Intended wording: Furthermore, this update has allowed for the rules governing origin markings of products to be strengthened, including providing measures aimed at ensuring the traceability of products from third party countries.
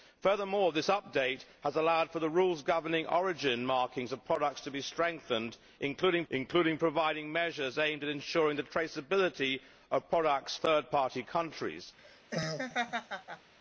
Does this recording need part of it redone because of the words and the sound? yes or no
yes